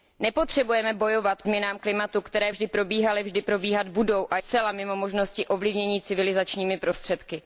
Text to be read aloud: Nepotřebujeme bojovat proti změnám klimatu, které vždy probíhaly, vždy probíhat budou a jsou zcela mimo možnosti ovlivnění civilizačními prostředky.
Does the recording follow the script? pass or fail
fail